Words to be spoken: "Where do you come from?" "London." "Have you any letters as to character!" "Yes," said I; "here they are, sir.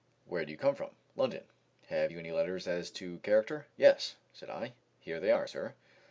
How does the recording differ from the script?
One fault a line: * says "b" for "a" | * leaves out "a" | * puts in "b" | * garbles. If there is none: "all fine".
all fine